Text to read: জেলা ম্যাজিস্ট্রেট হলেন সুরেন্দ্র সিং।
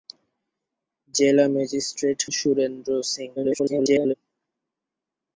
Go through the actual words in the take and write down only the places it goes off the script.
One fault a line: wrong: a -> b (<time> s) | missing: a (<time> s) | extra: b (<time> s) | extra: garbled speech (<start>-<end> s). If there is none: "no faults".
missing: হলেন (2.2 s)
extra: garbled speech (3.4-4.1 s)